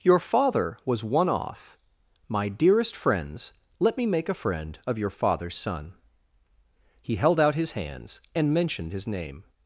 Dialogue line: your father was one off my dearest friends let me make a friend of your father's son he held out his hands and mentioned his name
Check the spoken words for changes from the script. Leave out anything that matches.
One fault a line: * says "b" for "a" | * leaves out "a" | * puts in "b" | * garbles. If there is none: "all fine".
all fine